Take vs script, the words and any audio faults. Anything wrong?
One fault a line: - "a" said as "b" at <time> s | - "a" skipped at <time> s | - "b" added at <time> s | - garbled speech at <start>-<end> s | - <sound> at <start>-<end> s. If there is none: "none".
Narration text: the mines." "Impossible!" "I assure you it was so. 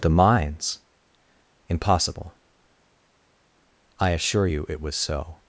none